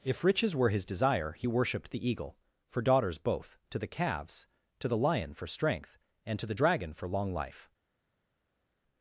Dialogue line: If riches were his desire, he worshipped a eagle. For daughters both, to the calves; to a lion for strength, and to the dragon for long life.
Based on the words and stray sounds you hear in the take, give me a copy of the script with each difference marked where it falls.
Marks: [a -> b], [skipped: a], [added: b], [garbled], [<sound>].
If riches were his desire, he worshipped [a -> the] eagle. For daughters both, to the calves; to [a -> the] lion for strength, and to the dragon for long life.